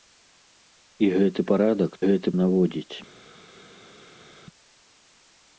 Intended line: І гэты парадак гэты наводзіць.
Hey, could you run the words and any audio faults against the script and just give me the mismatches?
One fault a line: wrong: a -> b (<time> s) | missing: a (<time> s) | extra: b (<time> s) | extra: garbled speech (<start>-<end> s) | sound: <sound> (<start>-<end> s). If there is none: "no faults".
no faults